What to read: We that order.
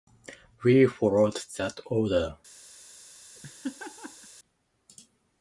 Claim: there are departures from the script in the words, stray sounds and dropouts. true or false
true